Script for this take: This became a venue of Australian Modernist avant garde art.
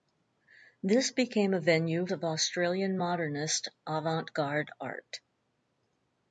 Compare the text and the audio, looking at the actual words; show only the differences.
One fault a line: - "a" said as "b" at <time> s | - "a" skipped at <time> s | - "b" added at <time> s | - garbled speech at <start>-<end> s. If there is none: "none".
none